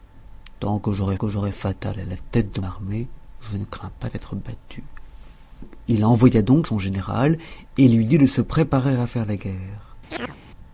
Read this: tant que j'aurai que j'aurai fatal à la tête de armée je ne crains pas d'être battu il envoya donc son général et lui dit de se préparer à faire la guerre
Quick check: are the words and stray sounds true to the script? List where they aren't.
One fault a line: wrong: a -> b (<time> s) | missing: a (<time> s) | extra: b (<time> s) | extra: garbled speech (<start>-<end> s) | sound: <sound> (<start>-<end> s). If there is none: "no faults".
sound: chirp (10.1-10.4 s)